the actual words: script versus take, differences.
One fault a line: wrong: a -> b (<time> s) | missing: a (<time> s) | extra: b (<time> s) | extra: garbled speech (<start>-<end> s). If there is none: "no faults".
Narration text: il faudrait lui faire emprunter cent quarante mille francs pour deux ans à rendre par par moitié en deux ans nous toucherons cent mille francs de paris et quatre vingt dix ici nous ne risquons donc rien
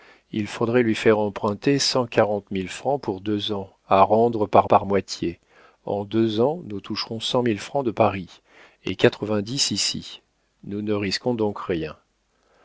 no faults